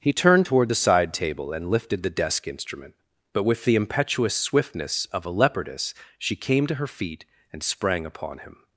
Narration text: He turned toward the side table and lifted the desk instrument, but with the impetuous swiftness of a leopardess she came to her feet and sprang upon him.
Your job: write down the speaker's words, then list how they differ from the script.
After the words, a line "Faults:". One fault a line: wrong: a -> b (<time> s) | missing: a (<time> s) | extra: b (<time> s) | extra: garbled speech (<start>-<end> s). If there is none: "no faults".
He turned toward the side table and lifted the desk instrument, but with the impetuous swiftness of a leopardess she came to her feet and sprang upon him.
Faults:
no faults